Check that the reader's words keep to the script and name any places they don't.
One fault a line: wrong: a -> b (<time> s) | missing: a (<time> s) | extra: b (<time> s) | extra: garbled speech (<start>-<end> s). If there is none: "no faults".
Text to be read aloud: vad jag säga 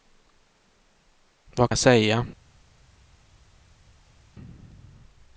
no faults